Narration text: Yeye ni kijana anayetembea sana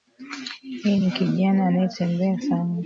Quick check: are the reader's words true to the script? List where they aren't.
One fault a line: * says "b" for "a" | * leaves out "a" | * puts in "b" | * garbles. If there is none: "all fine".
all fine